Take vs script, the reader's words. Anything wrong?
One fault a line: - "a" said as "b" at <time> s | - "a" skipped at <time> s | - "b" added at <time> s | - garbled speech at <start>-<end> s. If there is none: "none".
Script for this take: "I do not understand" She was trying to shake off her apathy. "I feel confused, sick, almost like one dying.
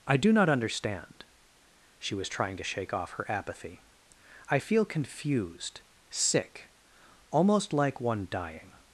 none